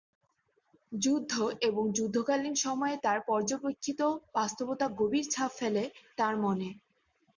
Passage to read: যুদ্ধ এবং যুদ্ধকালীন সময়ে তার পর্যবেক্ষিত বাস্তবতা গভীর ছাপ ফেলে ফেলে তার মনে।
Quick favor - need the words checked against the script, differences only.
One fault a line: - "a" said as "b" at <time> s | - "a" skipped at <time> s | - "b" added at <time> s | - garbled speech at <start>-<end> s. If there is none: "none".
- "ফেলে" skipped at 5.8 s